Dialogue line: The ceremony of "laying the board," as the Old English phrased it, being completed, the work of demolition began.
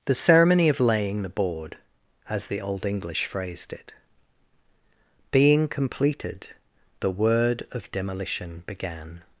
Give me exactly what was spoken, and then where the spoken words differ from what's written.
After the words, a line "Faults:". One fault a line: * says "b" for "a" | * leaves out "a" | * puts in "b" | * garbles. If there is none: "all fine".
The ceremony of "laying the board," as the Old English phrased it, being completed, the word of demolition began.
Faults:
* says "word" for "work"